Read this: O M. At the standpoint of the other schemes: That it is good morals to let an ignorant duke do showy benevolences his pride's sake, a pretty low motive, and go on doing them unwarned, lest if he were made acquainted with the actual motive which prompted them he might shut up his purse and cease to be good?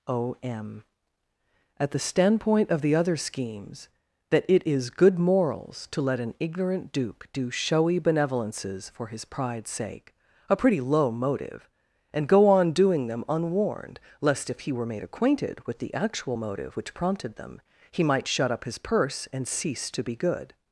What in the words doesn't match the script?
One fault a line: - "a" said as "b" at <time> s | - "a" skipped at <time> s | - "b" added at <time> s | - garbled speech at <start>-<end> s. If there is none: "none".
- "for" added at 8.9 s